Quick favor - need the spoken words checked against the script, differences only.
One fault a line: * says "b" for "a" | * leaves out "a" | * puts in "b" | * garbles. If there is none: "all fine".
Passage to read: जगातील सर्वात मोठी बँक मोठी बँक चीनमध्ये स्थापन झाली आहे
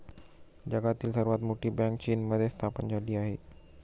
* leaves out "मोठी बँक"